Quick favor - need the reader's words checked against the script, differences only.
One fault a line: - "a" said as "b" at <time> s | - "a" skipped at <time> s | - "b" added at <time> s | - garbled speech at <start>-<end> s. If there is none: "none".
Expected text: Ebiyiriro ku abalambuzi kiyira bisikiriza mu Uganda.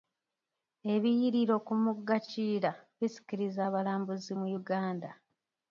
- "abalambuzi" said as "mugga" at 1.8 s
- "abalambuzi" added at 3.7 s